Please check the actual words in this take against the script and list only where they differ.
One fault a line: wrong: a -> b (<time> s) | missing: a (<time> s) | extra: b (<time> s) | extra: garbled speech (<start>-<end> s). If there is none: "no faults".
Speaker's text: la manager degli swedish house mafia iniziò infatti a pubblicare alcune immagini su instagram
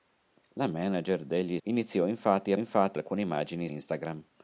missing: swedish house mafia (1.6 s)
wrong: pubblicare -> infatti (2.6 s)
missing: su (3.7 s)